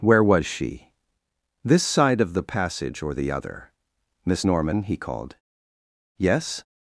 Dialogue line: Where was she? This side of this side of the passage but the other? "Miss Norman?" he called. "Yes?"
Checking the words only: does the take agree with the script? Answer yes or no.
no